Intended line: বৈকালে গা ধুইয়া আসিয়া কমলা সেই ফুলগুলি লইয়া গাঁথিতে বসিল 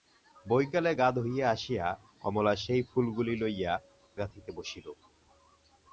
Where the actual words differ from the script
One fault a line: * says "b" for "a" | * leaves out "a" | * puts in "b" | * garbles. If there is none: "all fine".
all fine